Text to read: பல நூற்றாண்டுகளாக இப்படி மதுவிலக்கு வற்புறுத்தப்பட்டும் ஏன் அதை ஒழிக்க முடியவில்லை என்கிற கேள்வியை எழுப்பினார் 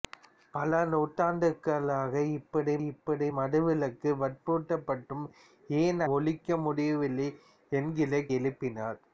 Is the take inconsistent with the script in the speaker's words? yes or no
yes